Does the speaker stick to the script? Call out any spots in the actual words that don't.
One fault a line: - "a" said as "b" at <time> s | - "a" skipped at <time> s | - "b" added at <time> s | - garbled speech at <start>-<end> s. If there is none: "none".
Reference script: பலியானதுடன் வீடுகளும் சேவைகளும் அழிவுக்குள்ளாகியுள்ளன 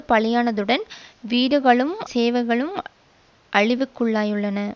none